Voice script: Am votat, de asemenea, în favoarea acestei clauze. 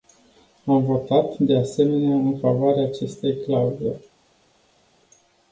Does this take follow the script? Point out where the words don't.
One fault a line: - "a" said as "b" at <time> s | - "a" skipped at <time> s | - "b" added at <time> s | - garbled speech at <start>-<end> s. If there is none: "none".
none